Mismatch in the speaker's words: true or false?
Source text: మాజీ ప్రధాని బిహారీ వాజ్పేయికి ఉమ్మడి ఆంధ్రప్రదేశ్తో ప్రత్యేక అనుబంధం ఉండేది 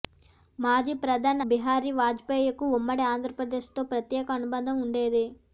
false